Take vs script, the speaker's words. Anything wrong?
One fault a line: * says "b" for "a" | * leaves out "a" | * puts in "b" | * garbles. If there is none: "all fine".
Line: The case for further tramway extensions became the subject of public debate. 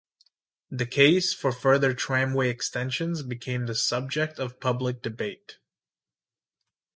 all fine